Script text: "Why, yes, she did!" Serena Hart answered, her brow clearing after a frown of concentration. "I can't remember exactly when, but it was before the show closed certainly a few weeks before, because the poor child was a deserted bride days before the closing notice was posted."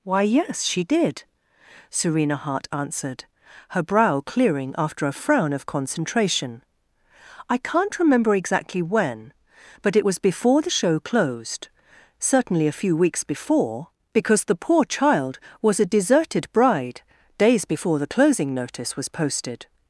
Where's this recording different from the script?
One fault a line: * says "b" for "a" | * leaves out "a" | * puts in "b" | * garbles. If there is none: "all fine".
all fine